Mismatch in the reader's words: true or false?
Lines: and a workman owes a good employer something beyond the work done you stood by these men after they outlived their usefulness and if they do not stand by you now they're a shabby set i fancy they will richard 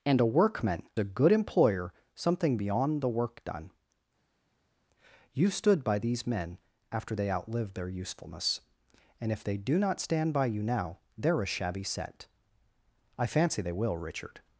true